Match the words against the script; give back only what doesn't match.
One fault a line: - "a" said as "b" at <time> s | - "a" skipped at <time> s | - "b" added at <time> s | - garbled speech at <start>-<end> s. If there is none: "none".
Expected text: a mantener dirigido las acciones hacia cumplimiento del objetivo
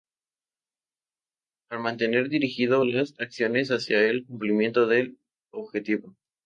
- "a" said as "para" at 1.7 s
- "el" added at 4.1 s